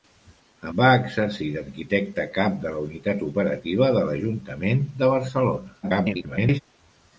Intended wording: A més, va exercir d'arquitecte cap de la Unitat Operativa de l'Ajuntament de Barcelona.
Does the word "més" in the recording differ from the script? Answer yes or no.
yes